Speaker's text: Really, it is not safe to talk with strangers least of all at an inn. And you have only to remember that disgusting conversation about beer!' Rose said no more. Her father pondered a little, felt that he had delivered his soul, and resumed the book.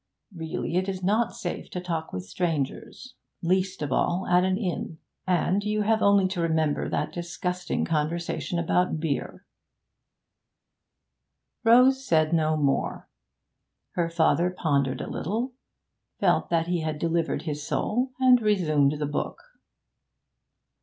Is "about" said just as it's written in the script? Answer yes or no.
yes